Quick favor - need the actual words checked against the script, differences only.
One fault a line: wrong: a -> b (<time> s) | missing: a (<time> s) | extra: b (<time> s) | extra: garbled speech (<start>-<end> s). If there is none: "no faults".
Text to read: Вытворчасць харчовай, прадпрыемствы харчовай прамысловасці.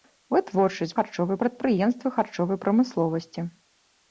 no faults